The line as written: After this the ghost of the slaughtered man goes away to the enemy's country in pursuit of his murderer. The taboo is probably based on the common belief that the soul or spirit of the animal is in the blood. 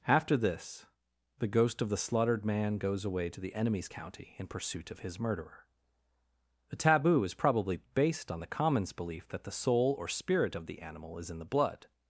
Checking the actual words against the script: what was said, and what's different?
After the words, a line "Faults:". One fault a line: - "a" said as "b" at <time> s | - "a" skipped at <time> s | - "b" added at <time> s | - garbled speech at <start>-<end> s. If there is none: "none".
After this the ghost of the slaughtered man goes away to the enemy's county in pursuit of his murderer. The taboo is probably based on the commons belief that the soul or spirit of the animal is in the blood.
Faults:
- "country" said as "county" at 3.9 s
- "common" said as "commons" at 8.5 s